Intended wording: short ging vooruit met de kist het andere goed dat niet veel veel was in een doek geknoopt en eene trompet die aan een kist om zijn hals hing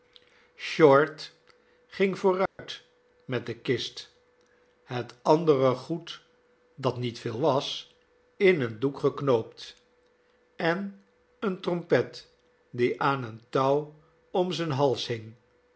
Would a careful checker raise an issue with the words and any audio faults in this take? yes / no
yes